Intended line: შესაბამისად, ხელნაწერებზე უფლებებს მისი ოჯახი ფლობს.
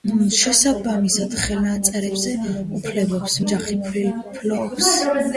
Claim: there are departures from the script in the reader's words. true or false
true